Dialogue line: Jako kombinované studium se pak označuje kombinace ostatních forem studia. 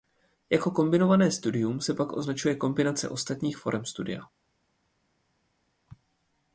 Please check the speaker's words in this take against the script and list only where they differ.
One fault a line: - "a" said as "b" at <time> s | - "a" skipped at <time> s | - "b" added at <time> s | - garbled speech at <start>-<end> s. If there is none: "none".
none